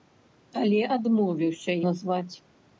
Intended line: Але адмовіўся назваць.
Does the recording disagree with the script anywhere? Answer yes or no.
no